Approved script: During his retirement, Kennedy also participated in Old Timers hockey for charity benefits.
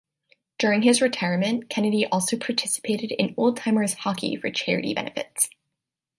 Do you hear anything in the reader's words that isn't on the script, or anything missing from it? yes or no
no